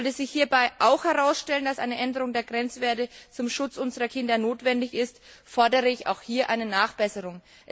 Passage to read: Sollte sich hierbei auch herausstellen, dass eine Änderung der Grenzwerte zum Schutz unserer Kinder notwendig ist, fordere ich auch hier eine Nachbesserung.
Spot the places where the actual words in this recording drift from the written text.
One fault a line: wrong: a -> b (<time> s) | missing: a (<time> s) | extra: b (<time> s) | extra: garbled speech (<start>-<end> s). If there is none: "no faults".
no faults